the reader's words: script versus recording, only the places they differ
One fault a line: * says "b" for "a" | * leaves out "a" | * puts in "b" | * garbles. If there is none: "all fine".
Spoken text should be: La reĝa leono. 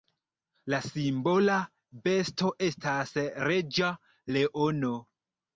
* puts in "simbola besto estas"